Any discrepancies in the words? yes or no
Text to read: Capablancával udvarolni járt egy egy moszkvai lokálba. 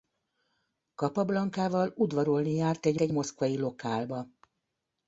no